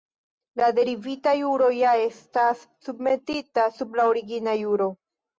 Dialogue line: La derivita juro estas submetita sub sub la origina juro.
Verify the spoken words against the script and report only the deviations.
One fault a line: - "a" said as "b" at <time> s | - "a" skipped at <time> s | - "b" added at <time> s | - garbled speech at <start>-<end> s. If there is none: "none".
- "ja" added at 1.8 s
- "sub" skipped at 3.9 s